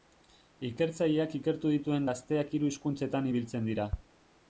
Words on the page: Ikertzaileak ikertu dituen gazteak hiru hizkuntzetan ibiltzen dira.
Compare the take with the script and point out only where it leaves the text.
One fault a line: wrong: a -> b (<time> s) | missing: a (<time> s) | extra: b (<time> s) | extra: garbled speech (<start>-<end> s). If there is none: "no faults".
no faults